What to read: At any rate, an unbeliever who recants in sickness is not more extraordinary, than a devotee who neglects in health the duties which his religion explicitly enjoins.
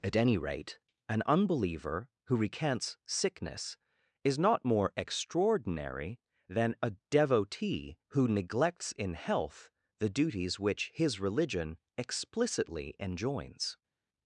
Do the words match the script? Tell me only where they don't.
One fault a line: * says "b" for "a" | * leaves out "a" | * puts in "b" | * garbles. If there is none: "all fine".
* leaves out "in"